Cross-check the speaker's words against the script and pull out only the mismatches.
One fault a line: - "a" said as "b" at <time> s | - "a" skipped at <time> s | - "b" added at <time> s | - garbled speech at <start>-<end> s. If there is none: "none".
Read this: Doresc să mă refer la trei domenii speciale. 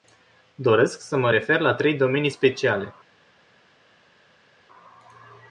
none